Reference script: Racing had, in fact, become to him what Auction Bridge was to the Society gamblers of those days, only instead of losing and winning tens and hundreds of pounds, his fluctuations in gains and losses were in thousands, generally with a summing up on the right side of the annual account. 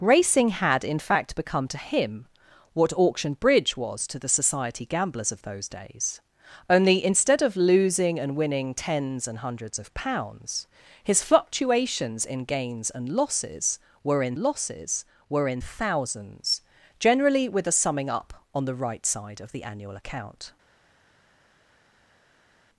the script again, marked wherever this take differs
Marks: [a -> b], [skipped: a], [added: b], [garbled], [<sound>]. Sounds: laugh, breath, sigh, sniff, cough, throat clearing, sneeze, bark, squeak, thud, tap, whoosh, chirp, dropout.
Racing had, in fact, become to him what Auction Bridge was to the Society gamblers of those days, only instead of losing and winning tens and hundreds of pounds, his fluctuations in gains and losses were in [added: losses were in] thousands, generally with a summing up on the right side of the annual account.